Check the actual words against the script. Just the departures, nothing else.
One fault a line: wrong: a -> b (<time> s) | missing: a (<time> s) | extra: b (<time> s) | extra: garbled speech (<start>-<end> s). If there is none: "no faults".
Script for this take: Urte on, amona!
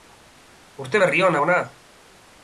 extra: berri (1.0 s)